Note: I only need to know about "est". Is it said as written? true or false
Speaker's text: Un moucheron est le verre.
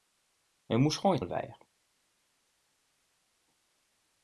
true